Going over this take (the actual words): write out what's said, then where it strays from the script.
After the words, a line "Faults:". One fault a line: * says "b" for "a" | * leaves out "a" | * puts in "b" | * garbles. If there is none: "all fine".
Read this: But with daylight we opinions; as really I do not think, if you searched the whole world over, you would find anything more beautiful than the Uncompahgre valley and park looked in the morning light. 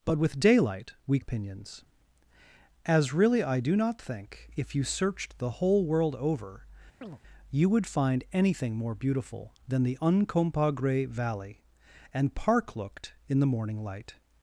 But with daylight we opinions; as really I do not think, if you searched the whole world over, you would find anything more beautiful than the Uncompahgre valley and park looked in the morning light.
Faults:
all fine